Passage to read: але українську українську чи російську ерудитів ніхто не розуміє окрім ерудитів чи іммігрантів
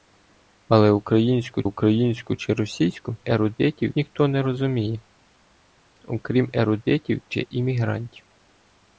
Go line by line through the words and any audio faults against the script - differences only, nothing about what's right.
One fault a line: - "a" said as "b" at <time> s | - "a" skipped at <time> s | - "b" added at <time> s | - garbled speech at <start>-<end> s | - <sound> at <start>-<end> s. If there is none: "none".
none